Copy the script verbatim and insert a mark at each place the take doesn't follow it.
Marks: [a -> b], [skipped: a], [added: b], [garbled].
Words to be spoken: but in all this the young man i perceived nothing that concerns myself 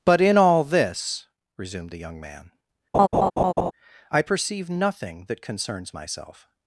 but in all this [added: resumed] the young man i [perceived -> perceive] nothing that concerns myself